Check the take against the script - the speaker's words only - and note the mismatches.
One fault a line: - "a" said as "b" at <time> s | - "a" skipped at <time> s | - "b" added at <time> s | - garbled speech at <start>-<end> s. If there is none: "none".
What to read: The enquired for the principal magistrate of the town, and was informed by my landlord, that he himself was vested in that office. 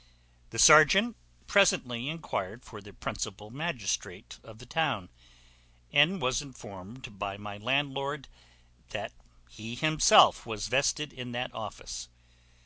- "serjeant presently" added at 0.6 s